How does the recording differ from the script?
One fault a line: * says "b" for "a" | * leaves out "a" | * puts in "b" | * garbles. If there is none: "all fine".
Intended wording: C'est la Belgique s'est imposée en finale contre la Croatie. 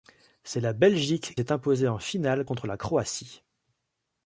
all fine